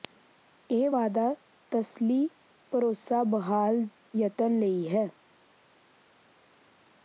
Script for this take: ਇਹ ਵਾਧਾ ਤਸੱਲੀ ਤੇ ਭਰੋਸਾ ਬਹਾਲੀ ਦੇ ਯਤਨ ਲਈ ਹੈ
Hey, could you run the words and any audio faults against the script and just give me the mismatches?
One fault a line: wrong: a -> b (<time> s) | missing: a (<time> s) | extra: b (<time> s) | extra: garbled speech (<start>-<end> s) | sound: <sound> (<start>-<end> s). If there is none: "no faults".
missing: ਤੇ (2.3 s)
missing: ਦੇ (3.9 s)